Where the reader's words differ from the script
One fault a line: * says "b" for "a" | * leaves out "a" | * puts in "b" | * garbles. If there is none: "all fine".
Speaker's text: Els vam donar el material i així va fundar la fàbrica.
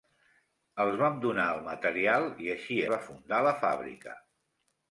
all fine